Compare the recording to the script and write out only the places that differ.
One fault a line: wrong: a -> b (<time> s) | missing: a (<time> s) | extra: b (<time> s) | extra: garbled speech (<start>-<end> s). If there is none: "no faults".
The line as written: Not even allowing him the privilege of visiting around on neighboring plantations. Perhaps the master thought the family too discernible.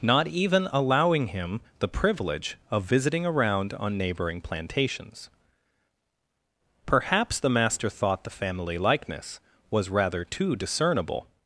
extra: likeness was rather (8.8 s)